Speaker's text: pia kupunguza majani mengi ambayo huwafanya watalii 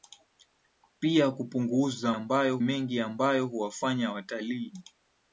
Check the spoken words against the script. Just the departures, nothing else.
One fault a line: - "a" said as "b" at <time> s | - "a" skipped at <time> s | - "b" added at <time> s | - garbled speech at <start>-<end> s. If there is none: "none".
- "majani" said as "ambayo" at 2.1 s